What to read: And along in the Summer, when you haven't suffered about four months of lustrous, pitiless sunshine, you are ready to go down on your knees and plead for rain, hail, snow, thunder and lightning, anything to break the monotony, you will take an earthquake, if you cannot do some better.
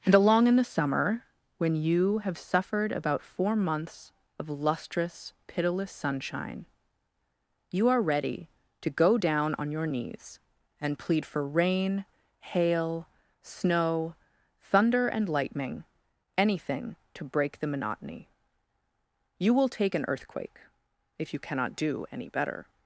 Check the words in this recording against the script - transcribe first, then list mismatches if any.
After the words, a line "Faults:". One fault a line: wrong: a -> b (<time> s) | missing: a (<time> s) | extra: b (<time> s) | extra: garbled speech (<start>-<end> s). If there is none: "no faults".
And along in the Summer, when you have suffered about four months of lustrous, pitiless sunshine, you are ready to go down on your knees and plead for rain, hail, snow, thunder and lightning, anything to break the monotony, you will take an earthquake, if you cannot do any better.
Faults:
wrong: haven't -> have (2.2 s)
wrong: some -> any (22.1 s)